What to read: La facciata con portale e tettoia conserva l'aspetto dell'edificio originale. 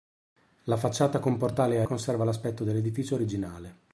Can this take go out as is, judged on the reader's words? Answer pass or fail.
fail